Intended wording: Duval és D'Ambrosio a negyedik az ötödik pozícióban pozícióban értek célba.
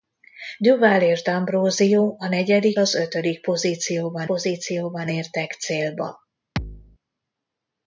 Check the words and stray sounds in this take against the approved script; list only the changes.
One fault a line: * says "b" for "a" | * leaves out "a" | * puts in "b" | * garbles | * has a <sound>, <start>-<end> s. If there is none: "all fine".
* has a thud, 6.6-7.0 s